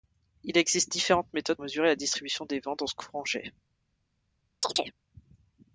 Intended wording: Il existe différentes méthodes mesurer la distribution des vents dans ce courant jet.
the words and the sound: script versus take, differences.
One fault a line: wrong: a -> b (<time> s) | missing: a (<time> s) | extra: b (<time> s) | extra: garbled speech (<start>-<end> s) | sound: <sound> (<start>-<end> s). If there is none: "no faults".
sound: chirp (4.6-5.0 s)